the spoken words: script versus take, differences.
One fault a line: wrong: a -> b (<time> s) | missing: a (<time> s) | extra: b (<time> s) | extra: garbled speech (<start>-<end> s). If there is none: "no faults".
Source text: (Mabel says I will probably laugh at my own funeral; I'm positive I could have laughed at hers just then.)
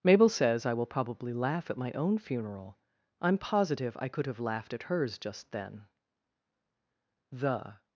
extra: The (7.3 s)